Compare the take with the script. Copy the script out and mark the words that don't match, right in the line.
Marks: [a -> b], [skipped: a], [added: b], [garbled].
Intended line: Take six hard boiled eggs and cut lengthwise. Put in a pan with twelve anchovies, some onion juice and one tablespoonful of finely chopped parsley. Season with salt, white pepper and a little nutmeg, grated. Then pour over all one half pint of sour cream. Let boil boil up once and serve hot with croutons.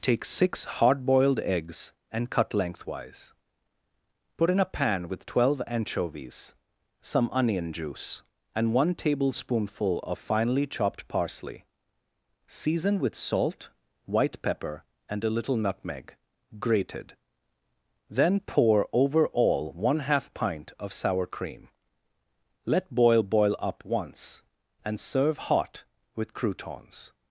Take six hard boiled eggs and cut lengthwise. Put in a pan with twelve anchovies, some onion juice and one tablespoonful of finely chopped parsley. Season with salt, white pepper and a little nutmeg, grated. Then pour over all one half pint of sour cream. Let boil boil up once and serve hot with croutons.